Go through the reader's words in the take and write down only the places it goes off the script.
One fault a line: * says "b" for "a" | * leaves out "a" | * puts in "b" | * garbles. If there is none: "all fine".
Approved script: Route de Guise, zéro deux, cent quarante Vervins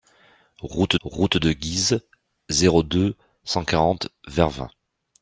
* puts in "route"